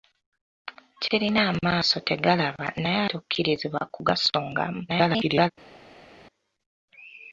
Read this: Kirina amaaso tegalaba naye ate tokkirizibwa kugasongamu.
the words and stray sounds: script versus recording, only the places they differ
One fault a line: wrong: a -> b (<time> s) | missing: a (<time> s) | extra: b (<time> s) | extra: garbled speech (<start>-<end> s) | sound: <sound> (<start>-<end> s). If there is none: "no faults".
missing: ate (3.0 s)
extra: garbled speech (4.9-5.5 s)